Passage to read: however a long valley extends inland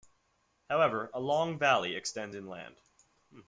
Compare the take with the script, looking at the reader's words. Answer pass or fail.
pass